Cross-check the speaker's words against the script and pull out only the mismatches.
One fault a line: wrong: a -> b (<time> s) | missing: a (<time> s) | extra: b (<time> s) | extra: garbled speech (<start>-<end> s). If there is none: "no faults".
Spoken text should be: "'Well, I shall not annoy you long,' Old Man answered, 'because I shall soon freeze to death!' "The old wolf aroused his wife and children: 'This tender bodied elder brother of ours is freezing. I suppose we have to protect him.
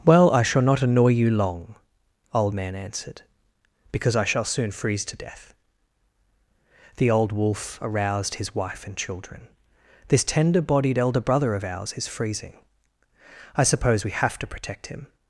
no faults